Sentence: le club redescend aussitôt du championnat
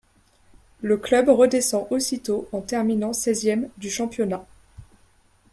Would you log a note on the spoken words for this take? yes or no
yes